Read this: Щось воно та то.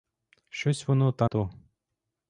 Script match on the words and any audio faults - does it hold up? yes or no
yes